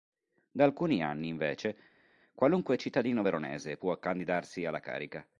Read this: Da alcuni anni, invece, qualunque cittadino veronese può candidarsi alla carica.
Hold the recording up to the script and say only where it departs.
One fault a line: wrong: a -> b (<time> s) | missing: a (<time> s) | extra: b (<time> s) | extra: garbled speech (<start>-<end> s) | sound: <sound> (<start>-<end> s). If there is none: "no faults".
no faults